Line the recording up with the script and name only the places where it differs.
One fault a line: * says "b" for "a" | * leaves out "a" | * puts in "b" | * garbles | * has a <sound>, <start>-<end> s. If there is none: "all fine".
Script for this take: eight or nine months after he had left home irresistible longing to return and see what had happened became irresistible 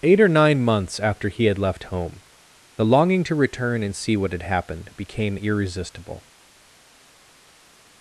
* says "the" for "irresistible"